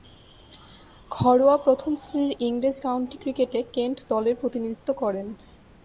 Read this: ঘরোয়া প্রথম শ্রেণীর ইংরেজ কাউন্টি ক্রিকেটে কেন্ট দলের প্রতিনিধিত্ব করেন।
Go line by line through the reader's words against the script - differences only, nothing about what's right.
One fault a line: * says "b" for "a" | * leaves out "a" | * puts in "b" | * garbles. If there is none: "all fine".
all fine